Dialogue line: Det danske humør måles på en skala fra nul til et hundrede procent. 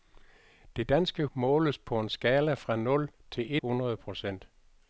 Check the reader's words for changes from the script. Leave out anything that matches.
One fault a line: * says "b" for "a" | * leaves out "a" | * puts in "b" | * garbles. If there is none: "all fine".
* leaves out "humør"
* leaves out "et"